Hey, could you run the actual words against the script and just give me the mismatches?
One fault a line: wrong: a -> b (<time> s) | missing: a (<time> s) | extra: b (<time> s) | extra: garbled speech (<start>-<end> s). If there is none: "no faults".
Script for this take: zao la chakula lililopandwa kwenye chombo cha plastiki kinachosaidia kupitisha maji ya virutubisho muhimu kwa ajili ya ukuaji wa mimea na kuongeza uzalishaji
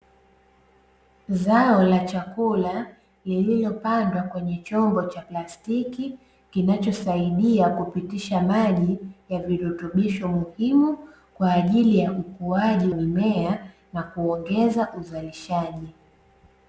missing: wa (12.9 s)